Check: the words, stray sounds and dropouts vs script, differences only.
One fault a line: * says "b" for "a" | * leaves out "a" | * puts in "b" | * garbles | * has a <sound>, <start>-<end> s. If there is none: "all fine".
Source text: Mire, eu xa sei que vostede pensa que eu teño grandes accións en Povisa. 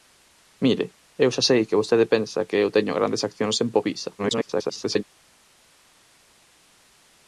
* garbles